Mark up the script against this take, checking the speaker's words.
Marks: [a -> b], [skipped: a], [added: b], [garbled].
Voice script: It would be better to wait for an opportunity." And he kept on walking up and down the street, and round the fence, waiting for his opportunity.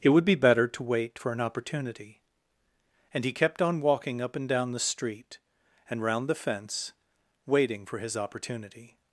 It would be better to wait for an opportunity." And he kept on walking up and down the street, and round the fence, waiting for his opportunity.